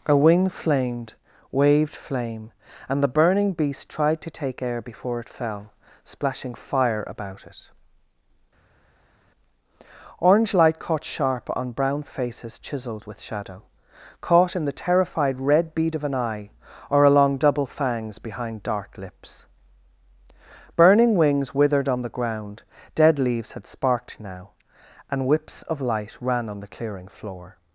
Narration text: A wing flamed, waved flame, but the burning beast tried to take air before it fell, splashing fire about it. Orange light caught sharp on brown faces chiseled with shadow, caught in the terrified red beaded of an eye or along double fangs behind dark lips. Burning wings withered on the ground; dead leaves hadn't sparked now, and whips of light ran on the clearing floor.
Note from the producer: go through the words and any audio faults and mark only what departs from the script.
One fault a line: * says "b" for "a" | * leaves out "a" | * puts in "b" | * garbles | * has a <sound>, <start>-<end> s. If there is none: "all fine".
* says "and" for "but"
* says "bead" for "beaded"
* says "had" for "hadn't"